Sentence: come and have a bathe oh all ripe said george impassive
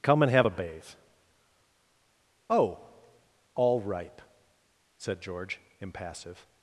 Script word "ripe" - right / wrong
right